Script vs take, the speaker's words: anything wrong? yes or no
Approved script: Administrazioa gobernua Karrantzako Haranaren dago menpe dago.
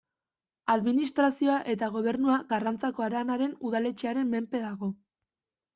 yes